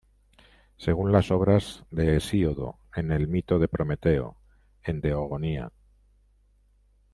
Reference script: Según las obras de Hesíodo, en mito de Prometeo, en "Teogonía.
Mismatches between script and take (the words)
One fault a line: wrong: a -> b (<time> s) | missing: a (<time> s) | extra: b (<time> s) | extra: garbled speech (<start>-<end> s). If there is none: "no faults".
extra: el (3.1 s)